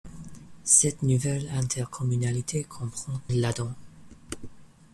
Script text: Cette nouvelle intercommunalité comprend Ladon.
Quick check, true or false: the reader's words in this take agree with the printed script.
true